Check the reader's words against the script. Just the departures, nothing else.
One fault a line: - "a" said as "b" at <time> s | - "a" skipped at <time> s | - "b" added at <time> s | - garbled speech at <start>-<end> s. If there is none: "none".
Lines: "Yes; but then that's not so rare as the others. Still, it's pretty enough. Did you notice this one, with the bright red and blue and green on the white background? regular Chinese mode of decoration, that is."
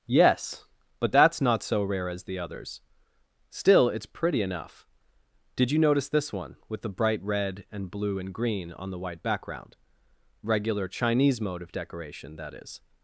- "then" skipped at 1.1 s